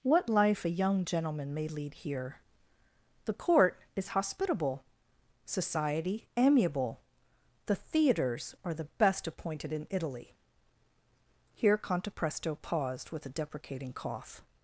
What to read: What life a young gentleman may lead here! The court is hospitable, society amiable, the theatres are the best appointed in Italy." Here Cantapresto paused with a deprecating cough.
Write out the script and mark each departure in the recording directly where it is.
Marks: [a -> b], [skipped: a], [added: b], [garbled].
What life a young gentleman may lead here! The court is hospitable, society amiable, the theatres are the best appointed in Italy." Here Cantapresto paused with a deprecating cough.